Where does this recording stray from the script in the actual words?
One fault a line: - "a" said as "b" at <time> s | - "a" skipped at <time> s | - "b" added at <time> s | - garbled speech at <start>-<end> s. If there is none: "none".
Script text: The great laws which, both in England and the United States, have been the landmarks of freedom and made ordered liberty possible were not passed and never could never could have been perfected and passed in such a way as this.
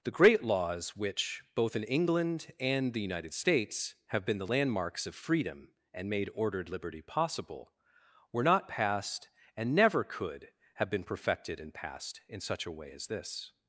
- "never could" skipped at 10.5 s